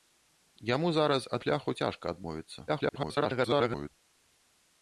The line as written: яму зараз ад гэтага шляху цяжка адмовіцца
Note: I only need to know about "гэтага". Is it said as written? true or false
false